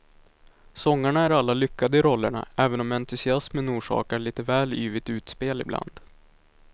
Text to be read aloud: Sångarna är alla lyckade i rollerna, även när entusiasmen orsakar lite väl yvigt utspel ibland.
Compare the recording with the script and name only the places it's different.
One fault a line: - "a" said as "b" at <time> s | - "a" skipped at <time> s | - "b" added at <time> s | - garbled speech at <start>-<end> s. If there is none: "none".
- "när" said as "om" at 2.8 s